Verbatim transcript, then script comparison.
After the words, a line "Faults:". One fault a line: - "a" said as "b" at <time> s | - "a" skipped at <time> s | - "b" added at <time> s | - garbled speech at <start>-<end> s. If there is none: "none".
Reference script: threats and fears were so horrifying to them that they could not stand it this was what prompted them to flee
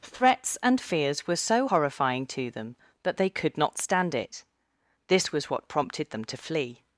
threats and fears were so horrifying to them that they could not stand it this was what prompted them to flee
Faults:
none